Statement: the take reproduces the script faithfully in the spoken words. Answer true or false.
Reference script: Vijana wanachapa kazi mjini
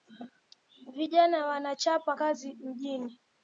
true